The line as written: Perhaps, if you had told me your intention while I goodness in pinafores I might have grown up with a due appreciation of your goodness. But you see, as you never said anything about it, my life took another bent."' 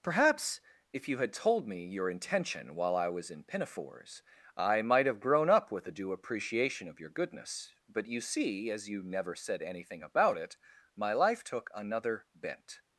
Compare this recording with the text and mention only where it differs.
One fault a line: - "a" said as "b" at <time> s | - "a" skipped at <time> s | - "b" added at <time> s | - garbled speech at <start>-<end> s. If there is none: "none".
- "goodness" said as "was" at 3.1 s